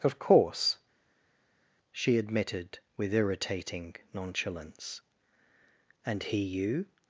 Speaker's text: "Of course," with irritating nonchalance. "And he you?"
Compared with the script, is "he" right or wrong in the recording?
right